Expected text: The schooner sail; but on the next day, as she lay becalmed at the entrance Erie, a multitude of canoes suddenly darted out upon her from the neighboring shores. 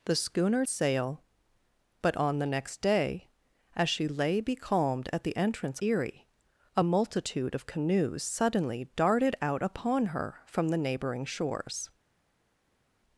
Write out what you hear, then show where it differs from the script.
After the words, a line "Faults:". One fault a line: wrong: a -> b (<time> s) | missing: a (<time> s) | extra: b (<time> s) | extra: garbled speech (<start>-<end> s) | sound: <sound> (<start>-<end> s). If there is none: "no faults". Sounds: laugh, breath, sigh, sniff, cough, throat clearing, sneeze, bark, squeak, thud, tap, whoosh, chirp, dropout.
The schooner sail; but on the next day, as she lay becalmed at the entrance Erie, a multitude of canoes suddenly darted out upon her from the neighboring shores.
Faults:
no faults